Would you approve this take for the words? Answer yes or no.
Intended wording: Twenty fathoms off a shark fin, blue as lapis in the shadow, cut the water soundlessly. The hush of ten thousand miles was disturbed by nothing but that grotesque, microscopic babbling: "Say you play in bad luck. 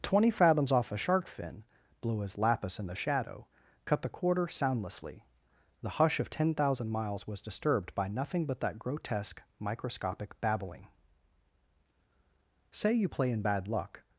no